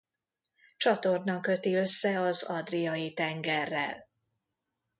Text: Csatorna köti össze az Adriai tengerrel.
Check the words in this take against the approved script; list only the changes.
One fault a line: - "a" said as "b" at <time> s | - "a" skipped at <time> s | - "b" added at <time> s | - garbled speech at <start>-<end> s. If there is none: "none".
none